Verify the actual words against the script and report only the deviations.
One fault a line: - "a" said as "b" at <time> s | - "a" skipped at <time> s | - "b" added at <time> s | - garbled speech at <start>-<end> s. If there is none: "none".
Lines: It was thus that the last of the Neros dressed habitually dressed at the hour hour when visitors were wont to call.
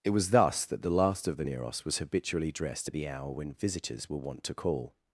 - "dressed" said as "was" at 1.8 s
- "hour" skipped at 3.3 s